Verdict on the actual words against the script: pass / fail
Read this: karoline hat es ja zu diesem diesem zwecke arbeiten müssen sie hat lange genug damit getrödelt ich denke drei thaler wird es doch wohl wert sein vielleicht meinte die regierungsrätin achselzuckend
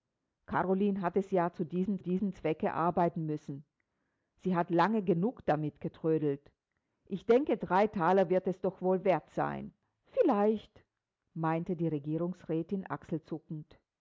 pass